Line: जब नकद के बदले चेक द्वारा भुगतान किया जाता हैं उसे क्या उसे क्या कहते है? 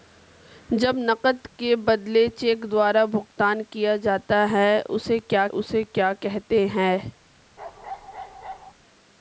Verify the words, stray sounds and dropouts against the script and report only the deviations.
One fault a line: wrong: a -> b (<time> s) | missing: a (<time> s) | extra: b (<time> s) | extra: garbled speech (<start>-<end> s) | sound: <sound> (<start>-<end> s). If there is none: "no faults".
sound: bark (7.6-8.7 s)